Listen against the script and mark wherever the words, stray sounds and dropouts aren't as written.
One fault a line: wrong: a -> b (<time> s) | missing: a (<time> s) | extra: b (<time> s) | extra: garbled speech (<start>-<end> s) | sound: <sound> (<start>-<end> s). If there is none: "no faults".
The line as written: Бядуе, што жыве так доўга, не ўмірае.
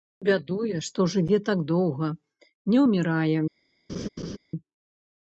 sound: laugh (3.9-4.4 s)